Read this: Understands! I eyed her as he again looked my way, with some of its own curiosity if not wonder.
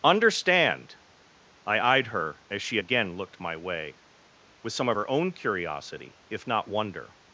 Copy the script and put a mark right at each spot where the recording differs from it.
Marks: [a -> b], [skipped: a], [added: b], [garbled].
[Understands! -> Understand] I eyed her as [he -> she] again looked my way, with some of [its -> her] own curiosity if not wonder.